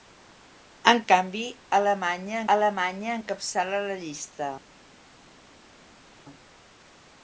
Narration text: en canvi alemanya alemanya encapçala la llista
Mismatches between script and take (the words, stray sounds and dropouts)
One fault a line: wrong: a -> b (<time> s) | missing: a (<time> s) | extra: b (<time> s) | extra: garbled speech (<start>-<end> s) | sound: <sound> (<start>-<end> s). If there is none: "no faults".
no faults